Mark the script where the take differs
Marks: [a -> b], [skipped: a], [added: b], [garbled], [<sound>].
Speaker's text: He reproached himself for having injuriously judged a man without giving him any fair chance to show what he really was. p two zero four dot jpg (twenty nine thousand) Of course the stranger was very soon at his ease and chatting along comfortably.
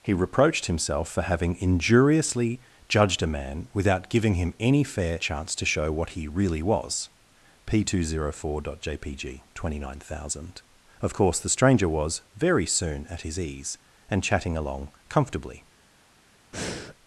He reproached himself for having injuriously judged a man without giving him any fair chance to show what he really was. p two zero four dot jpg (twenty nine thousand) Of course the stranger was very soon at his ease and chatting along comfortably. [breath]